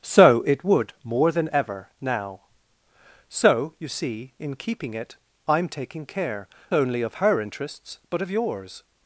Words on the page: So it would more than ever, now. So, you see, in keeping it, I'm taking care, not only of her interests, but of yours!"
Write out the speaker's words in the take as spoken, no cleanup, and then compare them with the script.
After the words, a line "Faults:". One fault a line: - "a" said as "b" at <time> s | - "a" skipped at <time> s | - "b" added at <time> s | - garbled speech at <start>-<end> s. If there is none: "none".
So it would more than ever, now. So, you see, in keeping it, I'm taking care, only of her interests, but of yours!"
Faults:
- "not" skipped at 6.5 s